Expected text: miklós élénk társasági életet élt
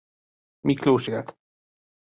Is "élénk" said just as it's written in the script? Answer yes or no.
no